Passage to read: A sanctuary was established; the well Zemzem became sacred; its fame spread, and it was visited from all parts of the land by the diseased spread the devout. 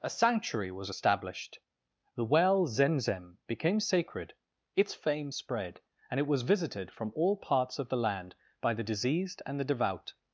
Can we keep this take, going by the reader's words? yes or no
no